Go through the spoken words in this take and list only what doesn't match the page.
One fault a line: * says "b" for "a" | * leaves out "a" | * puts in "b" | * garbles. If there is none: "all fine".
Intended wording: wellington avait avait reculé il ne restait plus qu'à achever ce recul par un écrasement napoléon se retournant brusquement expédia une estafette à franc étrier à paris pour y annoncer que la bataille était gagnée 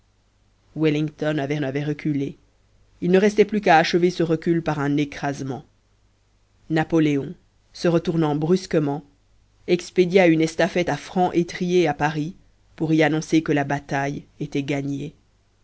all fine